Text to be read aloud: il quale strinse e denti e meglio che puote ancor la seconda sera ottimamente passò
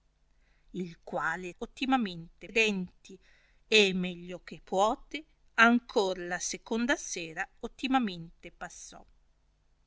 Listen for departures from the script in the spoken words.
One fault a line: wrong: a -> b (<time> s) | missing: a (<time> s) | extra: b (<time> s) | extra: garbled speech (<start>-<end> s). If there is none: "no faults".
wrong: strinse -> ottimamente (1.6 s)